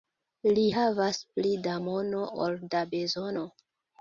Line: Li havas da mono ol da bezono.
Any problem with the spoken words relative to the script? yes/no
yes